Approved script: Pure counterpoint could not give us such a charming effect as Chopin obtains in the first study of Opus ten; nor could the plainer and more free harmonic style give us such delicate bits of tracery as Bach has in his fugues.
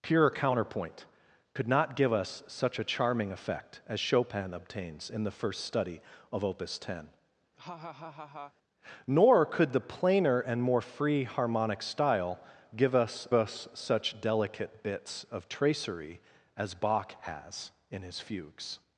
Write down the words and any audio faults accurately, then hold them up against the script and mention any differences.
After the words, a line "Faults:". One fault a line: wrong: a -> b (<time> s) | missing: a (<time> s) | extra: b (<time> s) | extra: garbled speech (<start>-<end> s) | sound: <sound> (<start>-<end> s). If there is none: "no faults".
Pure counterpoint could not give us such a charming effect as Chopin obtains in the first study of Opus ten; nor could the plainer and more free harmonic style give us us such delicate bits of tracery as Bach has in his fugues.
Faults:
sound: laugh (7.6-8.5 s)
extra: us (13.3 s)